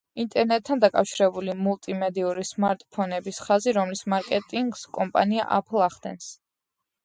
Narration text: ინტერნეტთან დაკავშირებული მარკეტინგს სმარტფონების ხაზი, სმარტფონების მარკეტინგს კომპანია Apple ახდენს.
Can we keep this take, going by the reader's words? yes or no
no